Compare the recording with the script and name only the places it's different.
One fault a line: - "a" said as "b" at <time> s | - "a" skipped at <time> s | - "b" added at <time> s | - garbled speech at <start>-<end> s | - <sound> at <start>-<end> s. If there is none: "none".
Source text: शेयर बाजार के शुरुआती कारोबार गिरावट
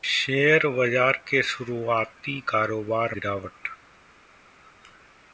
none